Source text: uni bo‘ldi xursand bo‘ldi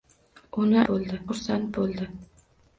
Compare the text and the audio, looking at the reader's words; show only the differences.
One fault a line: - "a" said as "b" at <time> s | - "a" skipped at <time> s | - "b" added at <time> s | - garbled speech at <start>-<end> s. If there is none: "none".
none